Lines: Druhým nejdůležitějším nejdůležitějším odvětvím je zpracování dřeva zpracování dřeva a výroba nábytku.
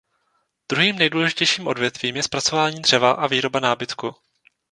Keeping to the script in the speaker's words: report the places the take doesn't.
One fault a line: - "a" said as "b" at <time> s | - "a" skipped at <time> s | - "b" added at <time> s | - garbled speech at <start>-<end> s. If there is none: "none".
- "nejdůležitějším" skipped at 1.7 s
- "zpracování dřeva" skipped at 3.1 s